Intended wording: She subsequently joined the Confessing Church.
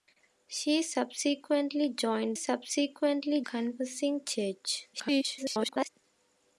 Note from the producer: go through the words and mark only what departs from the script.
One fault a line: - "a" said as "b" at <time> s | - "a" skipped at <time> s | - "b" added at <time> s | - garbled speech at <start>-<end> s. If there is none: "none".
- "the" said as "subsequently" at 2.3 s
- garbled speech at 4.9-5.9 s